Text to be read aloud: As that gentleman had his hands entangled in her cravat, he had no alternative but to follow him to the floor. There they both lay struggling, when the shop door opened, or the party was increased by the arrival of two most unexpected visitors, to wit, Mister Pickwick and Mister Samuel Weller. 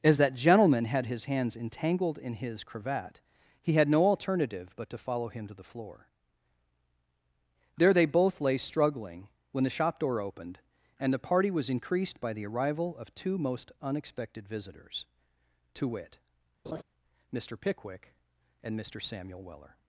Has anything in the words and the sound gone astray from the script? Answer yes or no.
yes